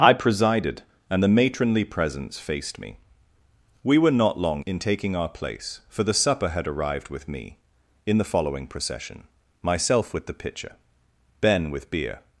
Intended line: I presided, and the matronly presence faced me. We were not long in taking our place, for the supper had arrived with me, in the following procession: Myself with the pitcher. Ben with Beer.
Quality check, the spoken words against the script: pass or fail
pass